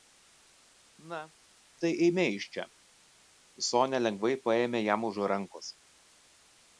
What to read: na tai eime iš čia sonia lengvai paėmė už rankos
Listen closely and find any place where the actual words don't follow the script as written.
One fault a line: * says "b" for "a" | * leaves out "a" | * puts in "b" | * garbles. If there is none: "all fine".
* puts in "jam"